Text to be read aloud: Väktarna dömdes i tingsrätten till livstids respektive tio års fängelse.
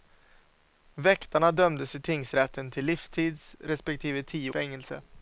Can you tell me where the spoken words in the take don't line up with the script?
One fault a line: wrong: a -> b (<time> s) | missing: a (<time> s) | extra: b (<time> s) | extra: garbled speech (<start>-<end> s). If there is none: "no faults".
missing: års (4.5 s)